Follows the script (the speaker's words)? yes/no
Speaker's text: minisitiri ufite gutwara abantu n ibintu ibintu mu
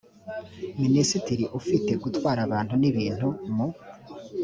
no